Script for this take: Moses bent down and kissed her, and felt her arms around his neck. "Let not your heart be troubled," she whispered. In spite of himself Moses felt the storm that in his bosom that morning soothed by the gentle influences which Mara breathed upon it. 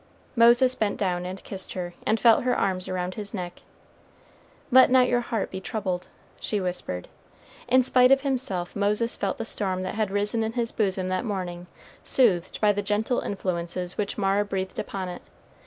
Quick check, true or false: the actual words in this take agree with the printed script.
false